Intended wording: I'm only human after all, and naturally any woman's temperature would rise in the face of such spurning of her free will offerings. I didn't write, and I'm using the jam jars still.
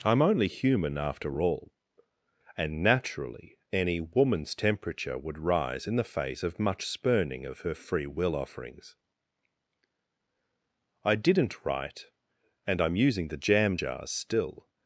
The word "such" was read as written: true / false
false